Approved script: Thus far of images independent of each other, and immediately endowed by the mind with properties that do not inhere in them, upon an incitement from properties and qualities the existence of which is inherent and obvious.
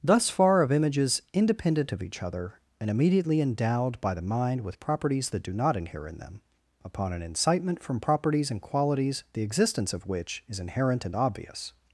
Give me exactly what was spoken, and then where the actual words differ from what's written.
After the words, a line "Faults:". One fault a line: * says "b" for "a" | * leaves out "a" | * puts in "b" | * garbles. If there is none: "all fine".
Thus far of images independent of each other, and immediately endowed by the mind with properties that do not inhere in them, upon an incitement from properties and qualities the existence of which is inherent and obvious.
Faults:
all fine